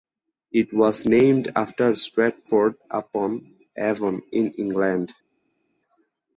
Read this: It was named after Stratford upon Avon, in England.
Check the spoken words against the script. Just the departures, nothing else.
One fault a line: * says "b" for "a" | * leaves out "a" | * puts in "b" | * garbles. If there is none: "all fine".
all fine